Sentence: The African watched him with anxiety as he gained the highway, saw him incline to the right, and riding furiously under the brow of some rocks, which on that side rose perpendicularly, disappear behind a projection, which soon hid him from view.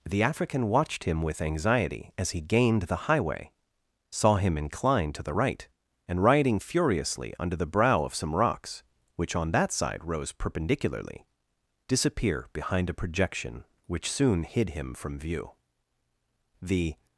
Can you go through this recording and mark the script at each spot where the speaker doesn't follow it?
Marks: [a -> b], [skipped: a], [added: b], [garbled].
The African watched him with anxiety as he gained the highway, saw him incline to the right, and riding furiously under the brow of some rocks, which on that side rose perpendicularly, disappear behind a projection, which soon hid him from view. [added: The]